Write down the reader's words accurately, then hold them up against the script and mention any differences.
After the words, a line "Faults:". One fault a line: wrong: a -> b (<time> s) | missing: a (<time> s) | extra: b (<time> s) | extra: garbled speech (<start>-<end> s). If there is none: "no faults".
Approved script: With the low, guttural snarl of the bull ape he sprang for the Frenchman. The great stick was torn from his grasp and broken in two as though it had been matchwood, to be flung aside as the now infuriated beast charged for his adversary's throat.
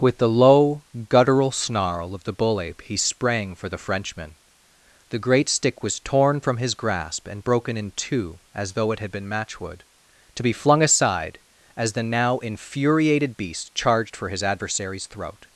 With the low, guttural snarl of the bull ape he sprang for the Frenchman. The great stick was torn from his grasp and broken in two as though it had been matchwood, to be flung aside as the now infuriated beast charged for his adversary's throat.
Faults:
no faults